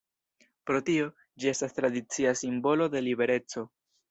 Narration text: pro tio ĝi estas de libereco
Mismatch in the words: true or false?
true